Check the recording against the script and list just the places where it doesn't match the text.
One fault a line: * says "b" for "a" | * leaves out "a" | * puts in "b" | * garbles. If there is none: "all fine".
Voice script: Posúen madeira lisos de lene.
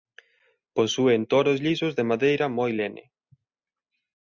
* says "toros" for "madeira"
* puts in "madeira moi"